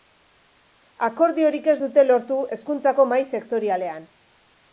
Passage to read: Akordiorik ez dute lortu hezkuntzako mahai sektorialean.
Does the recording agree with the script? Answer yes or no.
yes